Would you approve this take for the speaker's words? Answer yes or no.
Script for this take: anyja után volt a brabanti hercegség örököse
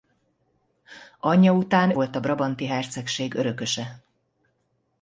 yes